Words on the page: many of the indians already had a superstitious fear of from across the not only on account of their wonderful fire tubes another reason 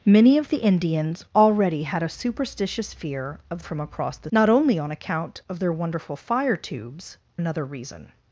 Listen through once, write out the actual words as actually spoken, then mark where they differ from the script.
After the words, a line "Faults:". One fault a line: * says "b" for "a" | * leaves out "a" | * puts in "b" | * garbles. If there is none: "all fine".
many of the indians already had a superstitious fear of from across the not only on account of their wonderful fire tubes another reason
Faults:
all fine